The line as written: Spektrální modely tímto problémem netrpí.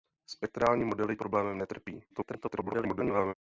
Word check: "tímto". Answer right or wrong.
wrong